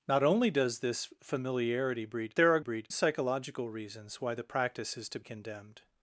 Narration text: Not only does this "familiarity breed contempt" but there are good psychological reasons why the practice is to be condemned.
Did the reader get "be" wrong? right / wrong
wrong